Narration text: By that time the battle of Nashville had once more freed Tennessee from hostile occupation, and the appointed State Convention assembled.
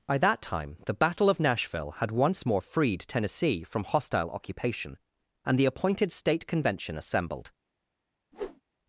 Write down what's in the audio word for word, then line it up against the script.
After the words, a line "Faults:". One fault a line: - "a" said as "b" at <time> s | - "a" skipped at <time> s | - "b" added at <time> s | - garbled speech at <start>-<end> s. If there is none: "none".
By that time the battle of Nashville had once more freed Tennessee from hostile occupation, and the appointed State Convention assembled.
Faults:
none